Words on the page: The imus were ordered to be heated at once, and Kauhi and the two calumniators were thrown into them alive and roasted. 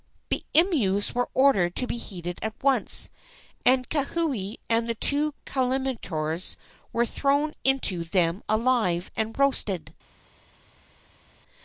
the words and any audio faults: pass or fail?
pass